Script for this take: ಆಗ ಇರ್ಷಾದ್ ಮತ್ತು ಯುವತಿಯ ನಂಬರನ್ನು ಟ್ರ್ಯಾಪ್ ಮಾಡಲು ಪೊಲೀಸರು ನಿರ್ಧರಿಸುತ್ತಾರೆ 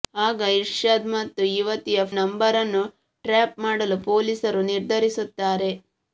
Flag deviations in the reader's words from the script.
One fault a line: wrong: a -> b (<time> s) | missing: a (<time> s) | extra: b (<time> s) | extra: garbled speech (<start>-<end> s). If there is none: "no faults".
no faults